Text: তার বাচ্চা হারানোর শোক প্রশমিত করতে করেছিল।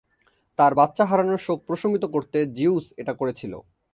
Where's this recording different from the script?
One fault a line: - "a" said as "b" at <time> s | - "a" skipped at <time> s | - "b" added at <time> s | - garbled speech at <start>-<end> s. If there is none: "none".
- "জিউস এটা" added at 2.5 s